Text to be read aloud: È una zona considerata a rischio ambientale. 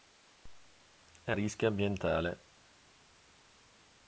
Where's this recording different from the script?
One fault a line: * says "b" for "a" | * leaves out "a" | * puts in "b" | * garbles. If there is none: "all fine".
* leaves out "una zona considerata"